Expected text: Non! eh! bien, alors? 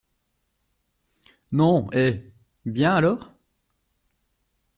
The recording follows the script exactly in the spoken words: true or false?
true